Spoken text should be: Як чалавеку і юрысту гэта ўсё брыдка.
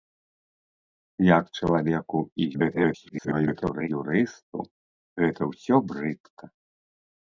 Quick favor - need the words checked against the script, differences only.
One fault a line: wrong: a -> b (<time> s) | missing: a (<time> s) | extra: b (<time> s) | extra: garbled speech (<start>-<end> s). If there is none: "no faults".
extra: garbled speech (2.5-3.9 s)